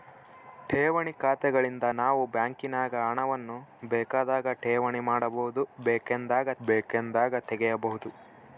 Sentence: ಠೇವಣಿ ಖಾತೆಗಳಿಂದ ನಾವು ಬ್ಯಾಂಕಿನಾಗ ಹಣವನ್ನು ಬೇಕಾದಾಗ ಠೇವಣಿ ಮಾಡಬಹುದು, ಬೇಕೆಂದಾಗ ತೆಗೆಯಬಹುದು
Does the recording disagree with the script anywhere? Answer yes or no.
yes